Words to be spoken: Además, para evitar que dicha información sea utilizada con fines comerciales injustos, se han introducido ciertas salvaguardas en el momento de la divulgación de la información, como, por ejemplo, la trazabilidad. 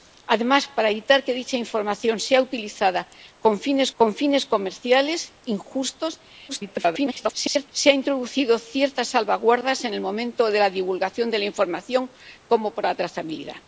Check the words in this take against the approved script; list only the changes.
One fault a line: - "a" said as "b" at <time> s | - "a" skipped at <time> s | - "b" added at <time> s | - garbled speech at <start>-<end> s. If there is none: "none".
- "con fines" added at 3.9 s
- garbled speech at 6.5-7.7 s
- "ejemplo" skipped at 12.9 s